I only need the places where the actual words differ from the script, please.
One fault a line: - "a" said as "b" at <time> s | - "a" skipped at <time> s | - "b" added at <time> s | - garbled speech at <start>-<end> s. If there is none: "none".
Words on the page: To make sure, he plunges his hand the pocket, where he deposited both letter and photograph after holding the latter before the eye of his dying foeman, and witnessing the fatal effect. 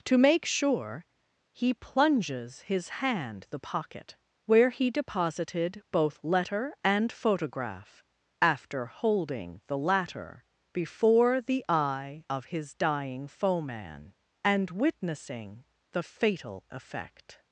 none